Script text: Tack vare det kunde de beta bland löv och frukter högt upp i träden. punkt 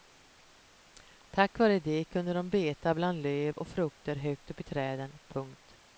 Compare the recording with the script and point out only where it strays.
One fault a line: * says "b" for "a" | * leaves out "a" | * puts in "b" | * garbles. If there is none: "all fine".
all fine